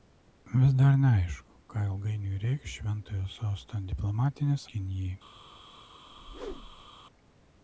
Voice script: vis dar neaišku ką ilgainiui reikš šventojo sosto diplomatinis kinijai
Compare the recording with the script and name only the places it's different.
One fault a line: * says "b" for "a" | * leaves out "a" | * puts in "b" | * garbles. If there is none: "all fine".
all fine